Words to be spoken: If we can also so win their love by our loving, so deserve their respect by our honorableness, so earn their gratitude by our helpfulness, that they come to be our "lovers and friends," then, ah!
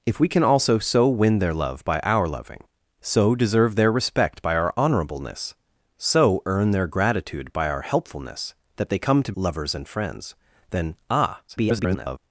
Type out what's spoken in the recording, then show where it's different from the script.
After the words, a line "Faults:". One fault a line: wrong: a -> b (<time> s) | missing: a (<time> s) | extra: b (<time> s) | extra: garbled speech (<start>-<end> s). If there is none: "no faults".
If we can also so win their love by our loving, so deserve their respect by our honorableness, so earn their gratitude by our helpfulness, that they come to "lovers and friends," then, ah! [garbled]
Faults:
missing: be our (9.3 s)
extra: garbled speech (11.5-12.2 s)